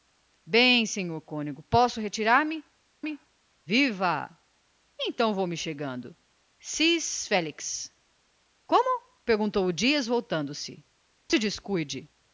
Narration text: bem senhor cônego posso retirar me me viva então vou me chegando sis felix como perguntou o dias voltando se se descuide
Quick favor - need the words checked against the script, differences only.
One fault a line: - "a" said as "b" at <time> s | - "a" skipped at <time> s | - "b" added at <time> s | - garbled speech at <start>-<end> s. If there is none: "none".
none